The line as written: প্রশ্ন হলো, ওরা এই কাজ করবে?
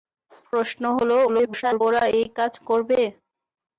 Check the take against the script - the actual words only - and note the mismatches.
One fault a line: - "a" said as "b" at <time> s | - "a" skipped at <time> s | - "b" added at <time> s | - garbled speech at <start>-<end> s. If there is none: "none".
- garbled speech at 1.3-1.8 s